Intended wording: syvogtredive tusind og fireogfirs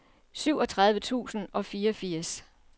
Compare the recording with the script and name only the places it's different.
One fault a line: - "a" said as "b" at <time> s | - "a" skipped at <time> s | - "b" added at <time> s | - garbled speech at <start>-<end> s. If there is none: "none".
none